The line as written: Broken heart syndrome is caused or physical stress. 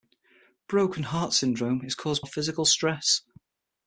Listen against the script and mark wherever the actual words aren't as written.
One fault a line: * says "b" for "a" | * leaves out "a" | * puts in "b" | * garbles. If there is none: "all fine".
all fine